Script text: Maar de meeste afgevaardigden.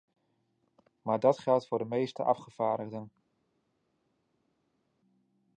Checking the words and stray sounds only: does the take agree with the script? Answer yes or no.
no